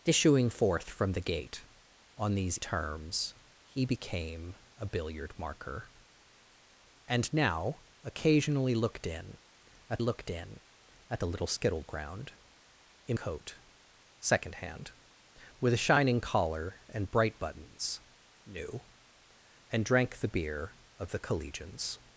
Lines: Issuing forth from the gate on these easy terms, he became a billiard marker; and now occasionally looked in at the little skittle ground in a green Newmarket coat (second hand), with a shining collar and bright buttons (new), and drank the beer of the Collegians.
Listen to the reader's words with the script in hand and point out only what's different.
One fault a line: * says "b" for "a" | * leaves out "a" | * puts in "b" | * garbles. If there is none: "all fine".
* leaves out "easy"
* puts in "looked in at"
* leaves out "a green Newmarket"